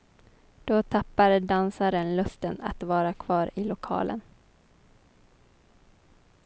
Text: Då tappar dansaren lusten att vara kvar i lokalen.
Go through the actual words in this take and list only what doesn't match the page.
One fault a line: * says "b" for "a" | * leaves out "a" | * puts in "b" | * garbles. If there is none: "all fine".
all fine